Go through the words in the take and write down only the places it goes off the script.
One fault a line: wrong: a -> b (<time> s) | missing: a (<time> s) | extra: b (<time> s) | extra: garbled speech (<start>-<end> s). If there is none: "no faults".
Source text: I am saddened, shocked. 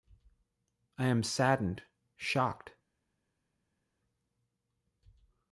no faults